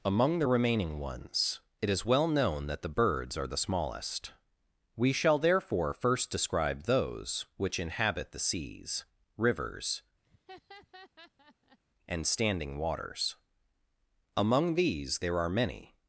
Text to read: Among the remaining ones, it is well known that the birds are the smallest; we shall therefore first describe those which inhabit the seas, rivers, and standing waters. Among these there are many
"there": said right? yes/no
yes